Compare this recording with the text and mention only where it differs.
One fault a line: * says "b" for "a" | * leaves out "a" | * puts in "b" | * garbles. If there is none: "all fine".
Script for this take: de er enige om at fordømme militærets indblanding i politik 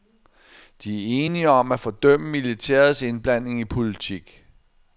all fine